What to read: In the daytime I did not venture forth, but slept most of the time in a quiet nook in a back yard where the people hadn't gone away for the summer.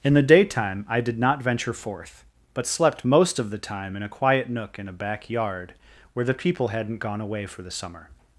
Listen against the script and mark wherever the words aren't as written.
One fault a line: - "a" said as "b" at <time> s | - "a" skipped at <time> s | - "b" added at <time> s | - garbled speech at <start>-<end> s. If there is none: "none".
none